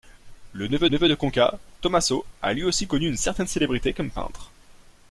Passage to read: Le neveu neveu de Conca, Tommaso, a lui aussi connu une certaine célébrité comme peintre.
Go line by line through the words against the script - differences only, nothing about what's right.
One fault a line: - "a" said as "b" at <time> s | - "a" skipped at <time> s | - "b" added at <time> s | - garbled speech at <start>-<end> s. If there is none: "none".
none